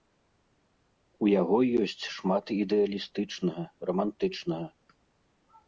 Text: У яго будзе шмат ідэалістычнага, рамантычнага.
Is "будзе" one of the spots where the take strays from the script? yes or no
yes